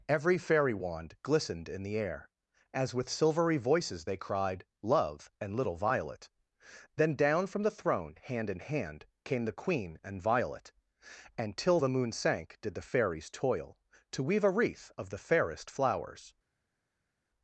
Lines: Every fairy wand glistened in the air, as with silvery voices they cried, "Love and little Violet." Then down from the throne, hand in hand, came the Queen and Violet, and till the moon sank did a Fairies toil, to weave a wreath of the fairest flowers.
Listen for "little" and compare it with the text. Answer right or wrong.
right